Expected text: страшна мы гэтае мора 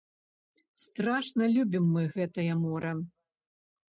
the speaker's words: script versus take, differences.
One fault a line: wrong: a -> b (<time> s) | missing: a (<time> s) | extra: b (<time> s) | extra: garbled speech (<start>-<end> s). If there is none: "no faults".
extra: любім (1.6 s)